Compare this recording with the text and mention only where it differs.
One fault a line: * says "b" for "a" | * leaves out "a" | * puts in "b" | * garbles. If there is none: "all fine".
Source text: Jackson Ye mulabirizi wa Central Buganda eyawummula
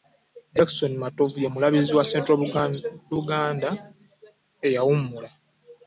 * puts in "Matovu"